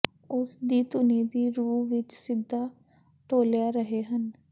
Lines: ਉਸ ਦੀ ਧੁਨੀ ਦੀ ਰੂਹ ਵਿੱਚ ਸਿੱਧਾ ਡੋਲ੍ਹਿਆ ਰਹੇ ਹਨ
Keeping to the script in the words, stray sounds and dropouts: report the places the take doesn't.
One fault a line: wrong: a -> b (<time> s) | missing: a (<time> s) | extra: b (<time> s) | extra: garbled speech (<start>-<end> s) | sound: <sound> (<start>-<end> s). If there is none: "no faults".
no faults